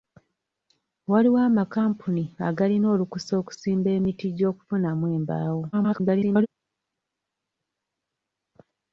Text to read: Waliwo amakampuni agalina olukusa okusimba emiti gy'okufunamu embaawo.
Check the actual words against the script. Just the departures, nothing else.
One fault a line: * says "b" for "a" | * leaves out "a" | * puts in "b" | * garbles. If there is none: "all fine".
* garbles